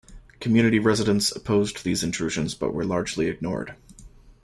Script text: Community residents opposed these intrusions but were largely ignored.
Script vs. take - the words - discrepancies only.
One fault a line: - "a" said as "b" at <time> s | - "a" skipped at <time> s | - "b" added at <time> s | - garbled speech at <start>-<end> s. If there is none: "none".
none